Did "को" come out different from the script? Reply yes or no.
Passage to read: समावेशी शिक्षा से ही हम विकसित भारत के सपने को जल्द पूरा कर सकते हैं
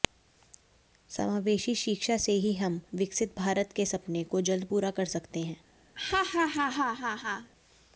no